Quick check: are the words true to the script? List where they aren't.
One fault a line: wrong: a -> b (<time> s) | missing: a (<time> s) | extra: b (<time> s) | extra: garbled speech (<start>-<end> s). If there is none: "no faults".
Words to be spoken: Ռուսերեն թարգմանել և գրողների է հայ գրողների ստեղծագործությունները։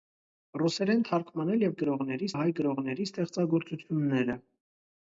no faults